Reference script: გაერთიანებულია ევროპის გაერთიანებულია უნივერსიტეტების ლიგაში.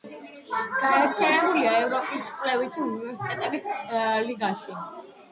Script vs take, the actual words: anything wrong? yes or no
yes